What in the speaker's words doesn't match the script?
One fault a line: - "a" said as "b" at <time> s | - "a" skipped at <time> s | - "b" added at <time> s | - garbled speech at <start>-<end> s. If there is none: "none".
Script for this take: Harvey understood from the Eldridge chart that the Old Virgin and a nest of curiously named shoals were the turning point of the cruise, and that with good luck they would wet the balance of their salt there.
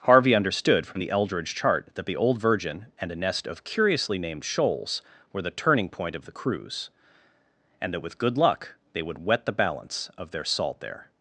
none